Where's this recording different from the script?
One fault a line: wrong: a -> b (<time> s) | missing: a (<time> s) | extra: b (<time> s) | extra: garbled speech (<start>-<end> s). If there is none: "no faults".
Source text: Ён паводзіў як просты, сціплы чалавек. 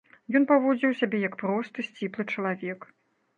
extra: сябе (1.0 s)